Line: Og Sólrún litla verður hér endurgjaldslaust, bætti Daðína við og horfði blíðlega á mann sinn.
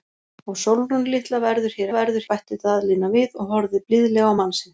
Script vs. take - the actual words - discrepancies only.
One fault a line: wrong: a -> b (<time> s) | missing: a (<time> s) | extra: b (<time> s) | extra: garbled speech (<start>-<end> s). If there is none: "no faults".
wrong: endurgjaldslaust -> verður (1.9 s)